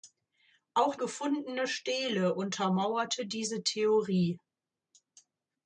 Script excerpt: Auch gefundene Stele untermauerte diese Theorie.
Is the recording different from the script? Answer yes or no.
no